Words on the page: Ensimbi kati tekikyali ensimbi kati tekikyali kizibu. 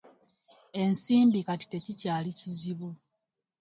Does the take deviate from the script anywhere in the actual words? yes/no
yes